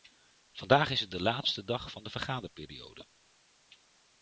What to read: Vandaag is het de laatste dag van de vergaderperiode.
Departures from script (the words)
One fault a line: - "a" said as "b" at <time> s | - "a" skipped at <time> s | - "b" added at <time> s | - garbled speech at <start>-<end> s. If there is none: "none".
none